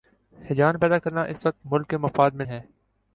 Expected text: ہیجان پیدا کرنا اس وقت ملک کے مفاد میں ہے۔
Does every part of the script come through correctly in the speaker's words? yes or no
yes